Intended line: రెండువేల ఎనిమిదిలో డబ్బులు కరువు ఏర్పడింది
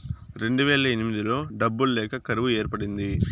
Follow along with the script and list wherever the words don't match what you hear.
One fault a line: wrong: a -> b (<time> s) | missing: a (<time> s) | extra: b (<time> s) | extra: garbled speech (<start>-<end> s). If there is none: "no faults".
extra: లేక (1.9 s)